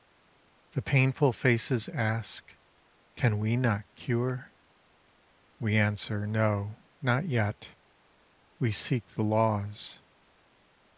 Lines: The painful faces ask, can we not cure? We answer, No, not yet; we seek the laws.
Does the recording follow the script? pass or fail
pass